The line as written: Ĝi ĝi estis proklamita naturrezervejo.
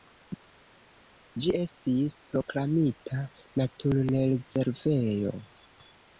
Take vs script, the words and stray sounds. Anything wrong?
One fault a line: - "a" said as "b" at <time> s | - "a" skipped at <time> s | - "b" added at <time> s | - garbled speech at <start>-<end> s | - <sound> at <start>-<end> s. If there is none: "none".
- "ĝi" skipped at 1.5 s